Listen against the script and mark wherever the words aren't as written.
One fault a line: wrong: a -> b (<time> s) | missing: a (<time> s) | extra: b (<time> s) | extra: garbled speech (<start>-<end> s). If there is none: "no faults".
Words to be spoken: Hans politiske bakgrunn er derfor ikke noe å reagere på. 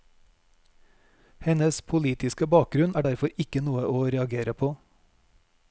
wrong: Hans -> Hennes (1.4 s)